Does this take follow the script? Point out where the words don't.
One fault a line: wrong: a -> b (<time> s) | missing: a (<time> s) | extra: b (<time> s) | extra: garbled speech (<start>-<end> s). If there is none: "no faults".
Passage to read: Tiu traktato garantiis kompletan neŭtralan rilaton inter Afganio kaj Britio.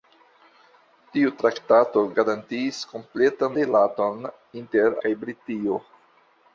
missing: neŭtralan (3.6 s)
missing: Afganio (5.0 s)